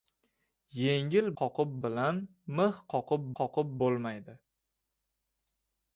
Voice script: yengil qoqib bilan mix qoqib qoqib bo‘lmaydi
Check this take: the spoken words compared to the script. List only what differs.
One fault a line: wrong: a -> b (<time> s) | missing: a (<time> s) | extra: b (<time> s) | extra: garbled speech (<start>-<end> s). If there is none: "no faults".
no faults